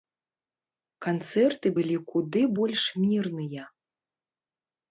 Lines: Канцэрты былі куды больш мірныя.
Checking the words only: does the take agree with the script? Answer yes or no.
yes